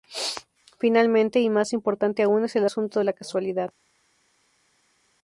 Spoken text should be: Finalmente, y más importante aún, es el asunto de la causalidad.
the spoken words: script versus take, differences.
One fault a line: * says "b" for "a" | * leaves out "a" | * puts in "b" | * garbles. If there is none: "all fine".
all fine